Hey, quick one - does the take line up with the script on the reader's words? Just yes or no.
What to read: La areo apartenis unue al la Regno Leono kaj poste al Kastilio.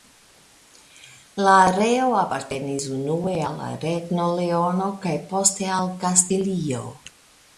yes